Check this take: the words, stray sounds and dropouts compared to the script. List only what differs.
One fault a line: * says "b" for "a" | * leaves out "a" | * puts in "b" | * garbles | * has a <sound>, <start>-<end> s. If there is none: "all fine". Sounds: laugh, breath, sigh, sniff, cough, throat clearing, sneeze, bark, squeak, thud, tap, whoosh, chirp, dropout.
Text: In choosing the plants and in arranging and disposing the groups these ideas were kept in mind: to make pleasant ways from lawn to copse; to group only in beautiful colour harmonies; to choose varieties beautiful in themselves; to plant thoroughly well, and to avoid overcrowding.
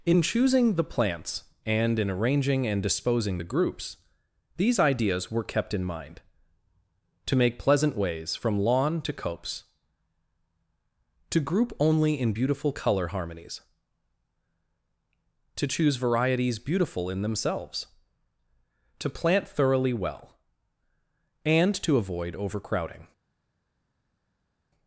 all fine